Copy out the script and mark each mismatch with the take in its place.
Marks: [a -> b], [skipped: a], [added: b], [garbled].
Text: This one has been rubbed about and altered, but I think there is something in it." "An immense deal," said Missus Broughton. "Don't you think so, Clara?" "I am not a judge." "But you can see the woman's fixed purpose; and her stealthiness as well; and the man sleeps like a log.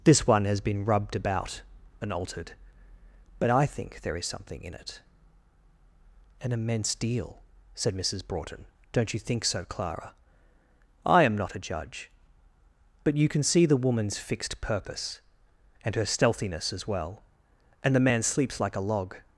This one has been rubbed about and altered, but I think there is something in it." "An immense deal," said Missus Broughton. "Don't you think so, Clara?" "I am not a judge." "But you can see the woman's fixed purpose; and her stealthiness as well; and the man sleeps like a log.